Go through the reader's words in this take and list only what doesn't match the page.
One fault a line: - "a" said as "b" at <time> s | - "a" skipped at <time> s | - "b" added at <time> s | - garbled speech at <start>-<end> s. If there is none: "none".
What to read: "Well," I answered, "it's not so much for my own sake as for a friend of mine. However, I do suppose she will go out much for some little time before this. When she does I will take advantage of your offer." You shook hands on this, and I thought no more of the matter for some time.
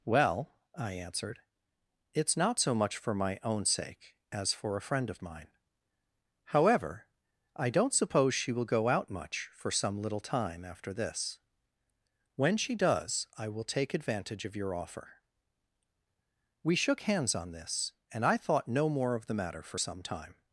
- "do" said as "don't" at 7.7 s
- "before" said as "after" at 10.7 s
- "You" said as "We" at 16.6 s